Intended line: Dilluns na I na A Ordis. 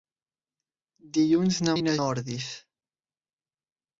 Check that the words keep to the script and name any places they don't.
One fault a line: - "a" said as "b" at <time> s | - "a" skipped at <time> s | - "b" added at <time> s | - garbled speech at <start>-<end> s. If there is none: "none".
none